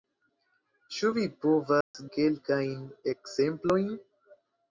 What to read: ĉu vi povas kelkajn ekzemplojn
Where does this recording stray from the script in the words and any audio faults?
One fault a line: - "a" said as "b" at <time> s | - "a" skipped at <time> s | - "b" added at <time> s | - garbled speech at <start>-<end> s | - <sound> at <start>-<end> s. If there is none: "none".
- dropout at 1.8-1.9 s